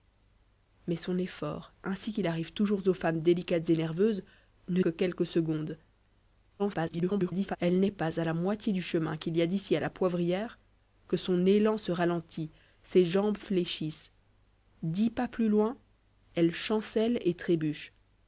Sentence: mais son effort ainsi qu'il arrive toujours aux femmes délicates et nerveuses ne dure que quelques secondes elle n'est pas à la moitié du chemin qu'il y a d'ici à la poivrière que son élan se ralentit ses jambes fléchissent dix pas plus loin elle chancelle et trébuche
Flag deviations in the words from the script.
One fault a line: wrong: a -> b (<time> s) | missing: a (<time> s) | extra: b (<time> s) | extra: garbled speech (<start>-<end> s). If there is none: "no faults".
missing: dure (4.8 s)
extra: garbled speech (6.6-7.6 s)